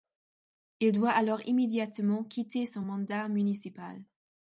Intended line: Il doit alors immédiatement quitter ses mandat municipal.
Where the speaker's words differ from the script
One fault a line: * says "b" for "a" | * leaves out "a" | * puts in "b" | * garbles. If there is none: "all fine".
* says "son" for "ses"